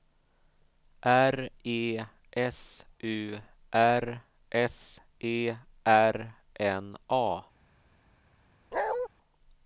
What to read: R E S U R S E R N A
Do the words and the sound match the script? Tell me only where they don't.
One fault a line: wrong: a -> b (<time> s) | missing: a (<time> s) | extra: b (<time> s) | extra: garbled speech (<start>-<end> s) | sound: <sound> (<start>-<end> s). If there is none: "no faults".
sound: bark (8.7-9.1 s)